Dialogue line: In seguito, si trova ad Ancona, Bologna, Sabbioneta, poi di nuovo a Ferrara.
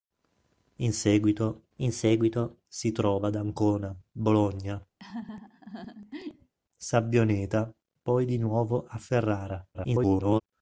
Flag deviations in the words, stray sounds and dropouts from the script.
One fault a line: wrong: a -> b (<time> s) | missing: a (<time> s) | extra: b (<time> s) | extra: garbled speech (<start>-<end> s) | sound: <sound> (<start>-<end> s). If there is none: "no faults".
extra: in seguito (1.8 s)
sound: laugh (5.0-6.5 s)
extra: garbled speech (9.7-10.4 s)